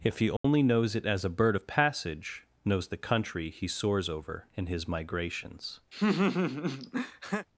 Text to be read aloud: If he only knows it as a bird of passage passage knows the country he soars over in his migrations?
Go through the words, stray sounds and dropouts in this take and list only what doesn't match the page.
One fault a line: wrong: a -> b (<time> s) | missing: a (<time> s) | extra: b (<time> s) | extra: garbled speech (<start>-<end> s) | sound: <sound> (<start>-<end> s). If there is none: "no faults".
sound: dropout (0.4-0.4 s)
missing: passage (2.4 s)
sound: laugh (5.9-7.5 s)